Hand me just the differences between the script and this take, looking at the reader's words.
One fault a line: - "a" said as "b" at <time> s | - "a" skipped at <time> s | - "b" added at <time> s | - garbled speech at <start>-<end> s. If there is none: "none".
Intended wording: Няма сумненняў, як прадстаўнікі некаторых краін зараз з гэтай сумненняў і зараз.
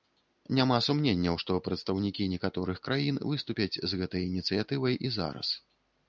- "як" said as "што" at 1.4 s
- "зараз" said as "выступяць" at 3.3 s
- "сумненняў" said as "ініцыятывай" at 4.3 s